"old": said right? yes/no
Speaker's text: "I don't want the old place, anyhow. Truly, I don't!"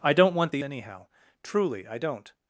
no